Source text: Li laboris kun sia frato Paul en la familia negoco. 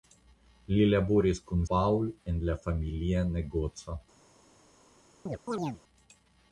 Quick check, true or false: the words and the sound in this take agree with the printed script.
false